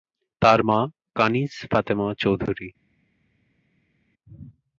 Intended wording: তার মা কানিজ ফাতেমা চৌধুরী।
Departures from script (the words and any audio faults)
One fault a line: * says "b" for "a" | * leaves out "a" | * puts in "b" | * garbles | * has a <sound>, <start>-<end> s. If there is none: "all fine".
all fine